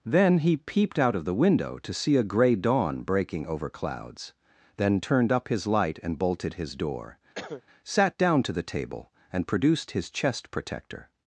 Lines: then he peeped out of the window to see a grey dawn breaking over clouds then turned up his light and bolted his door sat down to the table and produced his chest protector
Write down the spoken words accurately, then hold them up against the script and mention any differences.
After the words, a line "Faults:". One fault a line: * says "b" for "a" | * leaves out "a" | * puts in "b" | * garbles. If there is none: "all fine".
then he peeped out of the window to see a grey dawn breaking over clouds then turned up his light and bolted his door sat down to the table and produced his chest protector
Faults:
all fine